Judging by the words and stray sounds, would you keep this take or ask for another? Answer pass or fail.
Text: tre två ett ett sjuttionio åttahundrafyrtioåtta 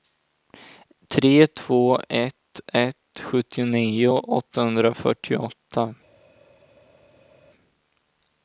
pass